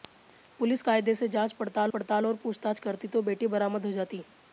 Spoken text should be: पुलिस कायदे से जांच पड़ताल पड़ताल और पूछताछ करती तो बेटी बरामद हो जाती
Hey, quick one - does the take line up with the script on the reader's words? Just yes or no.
yes